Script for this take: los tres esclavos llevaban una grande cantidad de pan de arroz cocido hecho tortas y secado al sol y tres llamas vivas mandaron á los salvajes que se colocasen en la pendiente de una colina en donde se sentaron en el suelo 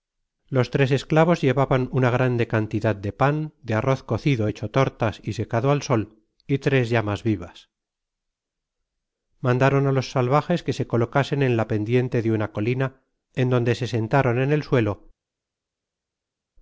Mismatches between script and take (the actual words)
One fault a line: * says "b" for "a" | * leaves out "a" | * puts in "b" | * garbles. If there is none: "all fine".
all fine